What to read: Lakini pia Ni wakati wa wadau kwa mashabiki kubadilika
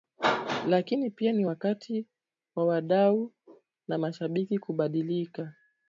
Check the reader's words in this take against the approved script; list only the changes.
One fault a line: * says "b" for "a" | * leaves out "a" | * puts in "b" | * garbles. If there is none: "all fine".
* says "na" for "kwa"